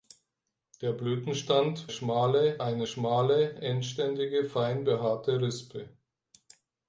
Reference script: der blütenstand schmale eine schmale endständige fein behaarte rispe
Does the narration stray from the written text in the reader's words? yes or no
no